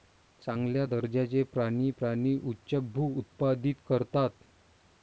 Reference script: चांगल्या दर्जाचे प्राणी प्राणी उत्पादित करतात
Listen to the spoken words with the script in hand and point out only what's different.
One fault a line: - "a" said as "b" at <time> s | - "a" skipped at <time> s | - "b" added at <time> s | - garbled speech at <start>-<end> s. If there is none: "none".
- "उच्चभ्रू" added at 2.4 s